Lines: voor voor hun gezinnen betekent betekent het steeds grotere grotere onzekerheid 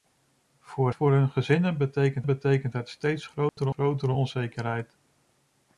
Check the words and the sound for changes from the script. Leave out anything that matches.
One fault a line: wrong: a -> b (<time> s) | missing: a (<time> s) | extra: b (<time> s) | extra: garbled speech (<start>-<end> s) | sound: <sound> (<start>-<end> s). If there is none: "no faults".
sound: dropout (3.5-3.6 s)